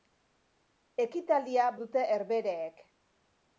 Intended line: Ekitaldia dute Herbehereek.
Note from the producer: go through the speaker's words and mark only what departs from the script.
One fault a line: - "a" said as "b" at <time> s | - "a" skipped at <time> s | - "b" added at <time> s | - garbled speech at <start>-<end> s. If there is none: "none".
none